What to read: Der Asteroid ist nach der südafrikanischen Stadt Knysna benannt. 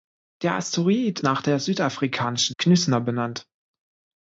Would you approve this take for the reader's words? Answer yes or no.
no